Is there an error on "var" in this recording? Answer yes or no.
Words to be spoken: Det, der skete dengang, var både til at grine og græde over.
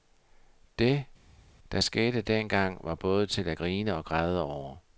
no